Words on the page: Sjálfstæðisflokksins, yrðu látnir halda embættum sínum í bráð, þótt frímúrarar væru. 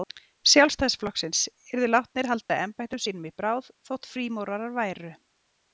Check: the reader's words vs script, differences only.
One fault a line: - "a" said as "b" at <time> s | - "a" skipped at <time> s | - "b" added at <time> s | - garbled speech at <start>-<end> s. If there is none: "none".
none